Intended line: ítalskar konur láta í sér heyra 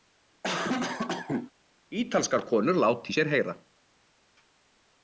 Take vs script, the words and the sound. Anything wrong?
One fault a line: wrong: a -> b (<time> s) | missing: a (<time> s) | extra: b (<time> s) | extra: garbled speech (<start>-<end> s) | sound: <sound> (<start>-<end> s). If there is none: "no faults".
sound: cough (0.4-1.5 s)